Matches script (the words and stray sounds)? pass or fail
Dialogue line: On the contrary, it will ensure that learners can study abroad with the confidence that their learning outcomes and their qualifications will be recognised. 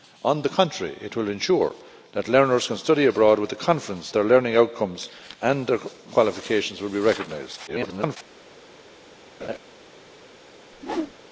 fail